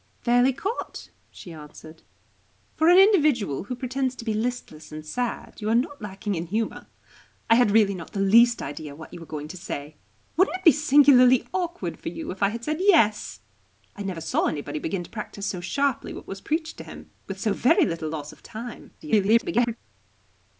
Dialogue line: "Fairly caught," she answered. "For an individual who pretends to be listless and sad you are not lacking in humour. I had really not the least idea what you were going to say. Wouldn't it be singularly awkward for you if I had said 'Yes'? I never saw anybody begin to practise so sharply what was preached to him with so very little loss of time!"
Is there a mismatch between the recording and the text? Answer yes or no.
yes